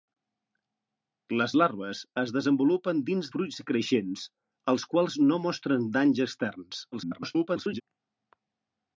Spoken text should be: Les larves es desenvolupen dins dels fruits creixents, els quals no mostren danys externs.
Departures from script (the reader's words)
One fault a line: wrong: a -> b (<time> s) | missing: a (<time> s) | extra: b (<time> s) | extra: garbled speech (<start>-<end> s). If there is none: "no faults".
missing: dels (3.3 s)
extra: garbled speech (6.9-7.8 s)